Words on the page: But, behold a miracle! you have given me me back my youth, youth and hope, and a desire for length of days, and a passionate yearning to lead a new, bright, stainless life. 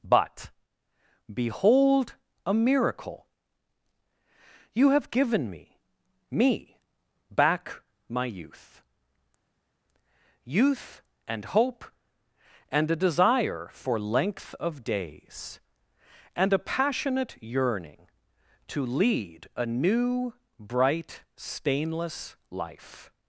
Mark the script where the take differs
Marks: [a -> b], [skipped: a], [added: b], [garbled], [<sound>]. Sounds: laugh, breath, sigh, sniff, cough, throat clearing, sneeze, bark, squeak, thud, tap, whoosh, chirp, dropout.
But, behold a miracle! you have given me me back my youth, youth and hope, and a desire for length of days, and a passionate yearning to lead a new, bright, stainless life.